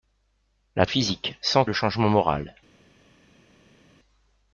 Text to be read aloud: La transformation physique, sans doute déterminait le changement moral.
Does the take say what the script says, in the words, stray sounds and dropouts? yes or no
no